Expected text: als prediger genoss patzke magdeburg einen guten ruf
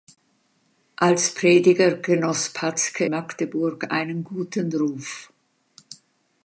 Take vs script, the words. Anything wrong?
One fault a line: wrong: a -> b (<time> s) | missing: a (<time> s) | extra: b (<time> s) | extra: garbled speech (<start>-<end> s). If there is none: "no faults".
no faults